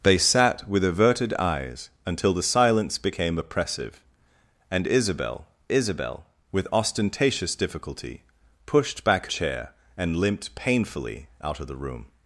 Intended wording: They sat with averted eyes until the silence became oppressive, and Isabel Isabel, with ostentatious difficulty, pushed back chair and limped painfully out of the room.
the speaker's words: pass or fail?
pass